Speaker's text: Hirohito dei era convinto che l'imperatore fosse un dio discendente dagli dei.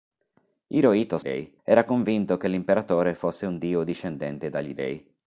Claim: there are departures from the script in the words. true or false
false